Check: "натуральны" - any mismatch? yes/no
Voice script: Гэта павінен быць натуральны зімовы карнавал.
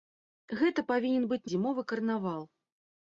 yes